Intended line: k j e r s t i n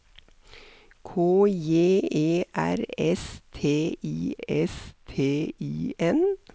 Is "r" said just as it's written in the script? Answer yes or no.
yes